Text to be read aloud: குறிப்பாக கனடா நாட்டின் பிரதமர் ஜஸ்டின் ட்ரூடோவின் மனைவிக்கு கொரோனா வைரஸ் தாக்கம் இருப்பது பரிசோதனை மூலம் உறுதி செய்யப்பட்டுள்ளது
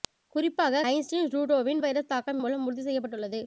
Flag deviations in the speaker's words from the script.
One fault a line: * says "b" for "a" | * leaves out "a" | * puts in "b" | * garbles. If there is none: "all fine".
* leaves out "கனடா நாட்டின் பிரதமர்"
* leaves out "மனைவிக்கு கொரோனா"
* leaves out "இருப்பது பரிசோதனை"